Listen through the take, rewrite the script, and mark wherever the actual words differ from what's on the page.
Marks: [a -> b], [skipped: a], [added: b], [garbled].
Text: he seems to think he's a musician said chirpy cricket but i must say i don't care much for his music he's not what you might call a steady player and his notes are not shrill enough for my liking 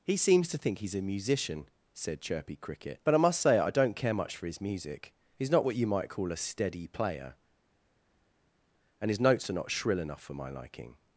he seems to think he's a musician said chirpy cricket but i must say i don't care much for his music he's not what you might call a steady player and his notes are not shrill enough for my liking